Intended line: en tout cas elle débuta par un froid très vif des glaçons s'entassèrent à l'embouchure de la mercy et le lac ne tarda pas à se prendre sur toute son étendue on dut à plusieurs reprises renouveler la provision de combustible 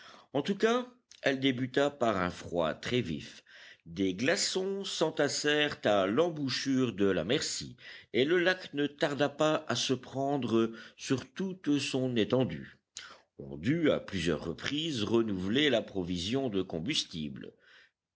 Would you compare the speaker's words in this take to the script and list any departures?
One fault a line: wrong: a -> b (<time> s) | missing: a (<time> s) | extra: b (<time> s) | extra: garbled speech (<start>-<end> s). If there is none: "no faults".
no faults